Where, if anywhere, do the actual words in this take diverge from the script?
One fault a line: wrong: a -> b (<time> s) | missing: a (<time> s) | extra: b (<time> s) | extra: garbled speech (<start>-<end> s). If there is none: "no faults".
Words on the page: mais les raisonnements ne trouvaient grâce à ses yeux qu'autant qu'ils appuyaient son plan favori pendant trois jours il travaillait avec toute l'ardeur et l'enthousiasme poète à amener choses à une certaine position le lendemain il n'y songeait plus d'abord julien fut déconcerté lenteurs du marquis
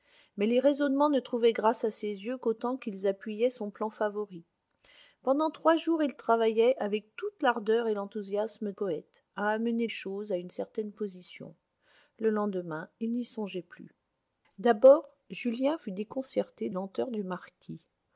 no faults